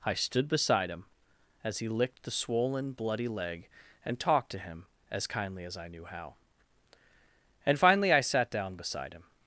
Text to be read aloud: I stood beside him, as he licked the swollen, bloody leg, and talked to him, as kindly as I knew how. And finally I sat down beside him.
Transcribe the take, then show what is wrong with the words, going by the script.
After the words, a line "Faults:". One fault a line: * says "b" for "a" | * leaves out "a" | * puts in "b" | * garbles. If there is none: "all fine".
I stood beside him, as he licked the swollen, bloody leg, and talked to him, as kindly as I knew how. And finally I sat down beside him.
Faults:
all fine